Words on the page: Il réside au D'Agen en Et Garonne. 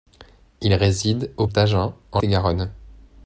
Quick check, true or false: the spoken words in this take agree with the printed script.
true